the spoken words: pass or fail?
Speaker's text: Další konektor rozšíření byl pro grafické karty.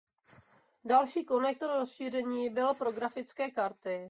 pass